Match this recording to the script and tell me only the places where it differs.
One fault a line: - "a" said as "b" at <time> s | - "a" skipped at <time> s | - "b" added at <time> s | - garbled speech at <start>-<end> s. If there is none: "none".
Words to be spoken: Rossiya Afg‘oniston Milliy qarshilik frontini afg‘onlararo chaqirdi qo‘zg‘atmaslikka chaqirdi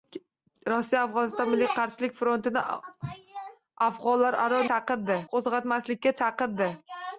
none